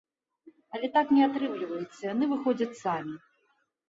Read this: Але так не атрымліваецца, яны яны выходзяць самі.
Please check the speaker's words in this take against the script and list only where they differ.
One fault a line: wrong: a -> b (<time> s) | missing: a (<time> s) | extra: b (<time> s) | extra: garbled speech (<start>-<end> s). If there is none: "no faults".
missing: яны (2.3 s)